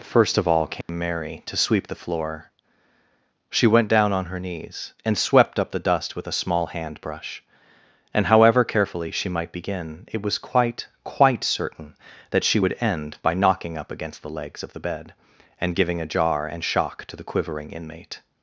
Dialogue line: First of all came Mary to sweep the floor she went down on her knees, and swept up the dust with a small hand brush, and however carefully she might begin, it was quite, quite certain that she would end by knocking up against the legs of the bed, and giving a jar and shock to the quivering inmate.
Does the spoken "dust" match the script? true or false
true